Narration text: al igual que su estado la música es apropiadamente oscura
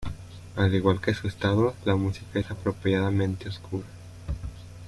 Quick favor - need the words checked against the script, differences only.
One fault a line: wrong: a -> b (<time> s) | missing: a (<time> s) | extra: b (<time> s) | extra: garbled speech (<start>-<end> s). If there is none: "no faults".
no faults